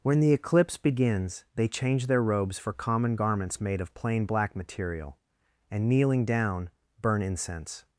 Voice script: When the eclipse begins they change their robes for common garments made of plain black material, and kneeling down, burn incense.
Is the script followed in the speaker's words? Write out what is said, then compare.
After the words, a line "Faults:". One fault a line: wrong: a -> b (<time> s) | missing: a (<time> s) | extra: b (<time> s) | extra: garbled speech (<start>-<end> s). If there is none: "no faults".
When the eclipse begins they change their robes for common garments made of plain black material, and kneeling down, burn incense.
Faults:
no faults